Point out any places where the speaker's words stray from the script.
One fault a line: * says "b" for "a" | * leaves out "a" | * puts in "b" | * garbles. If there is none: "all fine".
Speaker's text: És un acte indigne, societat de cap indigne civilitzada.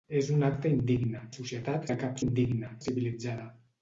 all fine